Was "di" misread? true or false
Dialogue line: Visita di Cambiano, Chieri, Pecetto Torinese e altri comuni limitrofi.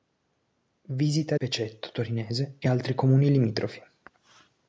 true